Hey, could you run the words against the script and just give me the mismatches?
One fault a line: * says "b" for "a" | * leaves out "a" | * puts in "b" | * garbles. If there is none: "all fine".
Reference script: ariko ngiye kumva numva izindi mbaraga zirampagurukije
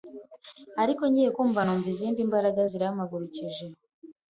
all fine